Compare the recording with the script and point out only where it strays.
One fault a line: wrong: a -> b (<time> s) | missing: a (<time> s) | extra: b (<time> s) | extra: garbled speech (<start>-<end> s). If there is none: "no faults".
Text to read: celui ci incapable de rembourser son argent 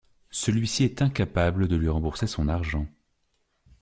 extra: est (0.8 s)
extra: lui (1.8 s)